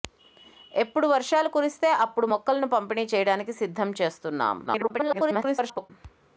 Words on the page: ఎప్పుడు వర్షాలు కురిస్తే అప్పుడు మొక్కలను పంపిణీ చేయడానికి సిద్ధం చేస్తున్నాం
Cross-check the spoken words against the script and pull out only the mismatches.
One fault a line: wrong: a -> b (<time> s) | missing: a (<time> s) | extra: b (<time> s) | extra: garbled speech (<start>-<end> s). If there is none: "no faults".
extra: garbled speech (4.7-5.9 s)